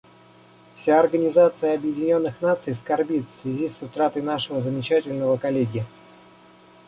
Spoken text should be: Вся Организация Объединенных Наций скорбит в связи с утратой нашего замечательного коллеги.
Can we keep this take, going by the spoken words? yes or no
yes